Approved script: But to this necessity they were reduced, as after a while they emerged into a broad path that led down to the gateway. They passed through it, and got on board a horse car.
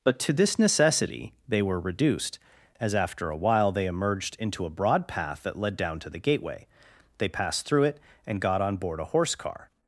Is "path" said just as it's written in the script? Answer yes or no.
yes